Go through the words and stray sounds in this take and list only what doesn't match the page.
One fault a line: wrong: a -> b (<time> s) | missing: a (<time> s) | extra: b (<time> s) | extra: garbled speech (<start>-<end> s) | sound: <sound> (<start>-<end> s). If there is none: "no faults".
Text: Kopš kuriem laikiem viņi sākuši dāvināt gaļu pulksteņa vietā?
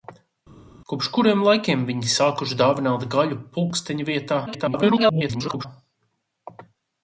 extra: garbled speech (4.5-5.7 s)